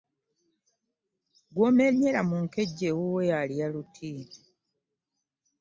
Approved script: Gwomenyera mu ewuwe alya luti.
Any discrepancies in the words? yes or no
yes